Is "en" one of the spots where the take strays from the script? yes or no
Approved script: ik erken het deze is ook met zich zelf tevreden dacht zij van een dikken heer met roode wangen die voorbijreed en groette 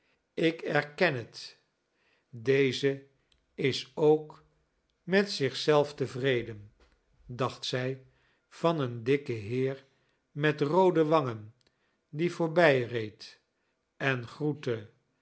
no